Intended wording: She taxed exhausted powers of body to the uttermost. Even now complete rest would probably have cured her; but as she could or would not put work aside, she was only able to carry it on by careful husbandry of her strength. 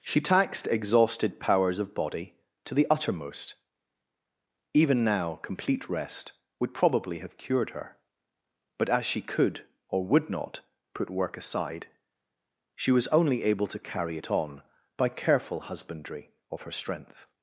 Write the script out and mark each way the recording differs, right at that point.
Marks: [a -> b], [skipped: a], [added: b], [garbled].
She taxed exhausted powers of body to the uttermost. Even now complete rest would probably have cured her; but as she could or would not put work aside, she was only able to carry it on by careful husbandry of her strength.